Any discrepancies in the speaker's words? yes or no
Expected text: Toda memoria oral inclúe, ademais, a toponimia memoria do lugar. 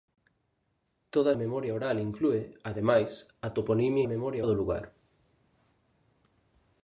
no